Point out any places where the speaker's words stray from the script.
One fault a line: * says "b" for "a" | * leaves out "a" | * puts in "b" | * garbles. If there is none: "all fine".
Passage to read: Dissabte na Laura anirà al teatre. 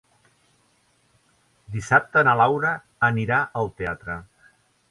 all fine